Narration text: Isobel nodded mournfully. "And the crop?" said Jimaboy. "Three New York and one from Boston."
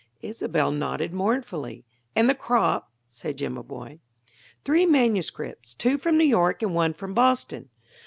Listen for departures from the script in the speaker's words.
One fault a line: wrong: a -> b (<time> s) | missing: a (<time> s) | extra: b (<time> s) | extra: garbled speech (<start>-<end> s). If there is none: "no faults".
extra: manuscripts two from (4.9 s)